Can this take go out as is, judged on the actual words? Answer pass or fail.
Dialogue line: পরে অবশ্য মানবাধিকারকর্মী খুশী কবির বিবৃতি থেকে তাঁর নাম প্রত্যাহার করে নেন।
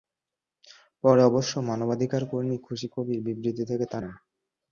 fail